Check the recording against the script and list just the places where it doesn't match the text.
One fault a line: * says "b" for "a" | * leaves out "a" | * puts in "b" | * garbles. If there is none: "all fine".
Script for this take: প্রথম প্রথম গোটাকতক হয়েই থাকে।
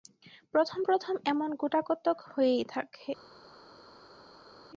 * puts in "এমন"